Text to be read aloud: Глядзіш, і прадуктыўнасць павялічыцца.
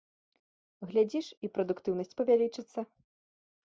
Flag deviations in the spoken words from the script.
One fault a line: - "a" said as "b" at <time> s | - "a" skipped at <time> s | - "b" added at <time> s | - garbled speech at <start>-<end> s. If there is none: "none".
none